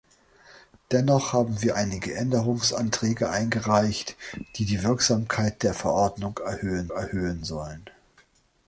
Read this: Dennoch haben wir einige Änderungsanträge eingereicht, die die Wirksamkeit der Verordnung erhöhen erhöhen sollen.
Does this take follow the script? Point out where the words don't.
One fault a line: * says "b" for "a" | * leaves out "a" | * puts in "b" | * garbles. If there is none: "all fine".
all fine